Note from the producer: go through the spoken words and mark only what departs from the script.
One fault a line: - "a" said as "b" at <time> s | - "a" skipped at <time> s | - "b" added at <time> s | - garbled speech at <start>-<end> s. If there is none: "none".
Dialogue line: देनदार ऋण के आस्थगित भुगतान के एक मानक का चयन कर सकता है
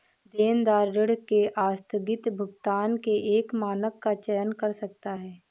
none